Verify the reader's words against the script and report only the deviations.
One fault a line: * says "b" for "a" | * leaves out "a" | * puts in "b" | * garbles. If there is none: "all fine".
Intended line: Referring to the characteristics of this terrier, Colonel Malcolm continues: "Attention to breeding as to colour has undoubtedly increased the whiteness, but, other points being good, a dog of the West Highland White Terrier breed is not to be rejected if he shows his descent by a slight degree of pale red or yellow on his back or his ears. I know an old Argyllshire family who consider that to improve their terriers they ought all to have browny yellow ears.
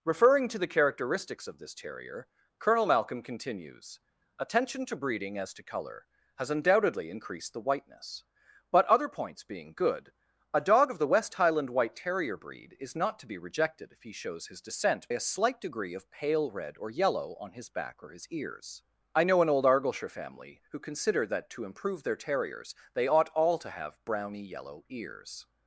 * leaves out "by"